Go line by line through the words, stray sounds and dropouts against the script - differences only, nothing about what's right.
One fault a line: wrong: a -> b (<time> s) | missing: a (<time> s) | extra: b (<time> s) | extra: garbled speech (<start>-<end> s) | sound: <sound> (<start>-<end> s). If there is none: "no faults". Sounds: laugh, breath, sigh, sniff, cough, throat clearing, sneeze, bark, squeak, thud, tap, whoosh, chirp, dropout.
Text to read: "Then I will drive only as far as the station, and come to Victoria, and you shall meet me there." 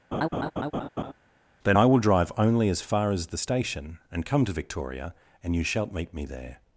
sound: laugh (0.1-1.1 s)
wrong: shall -> shalt (5.6 s)